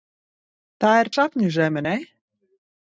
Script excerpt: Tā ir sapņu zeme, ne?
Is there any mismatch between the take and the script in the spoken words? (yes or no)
no